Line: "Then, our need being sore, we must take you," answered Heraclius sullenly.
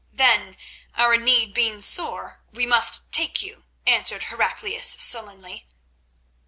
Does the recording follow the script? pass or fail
pass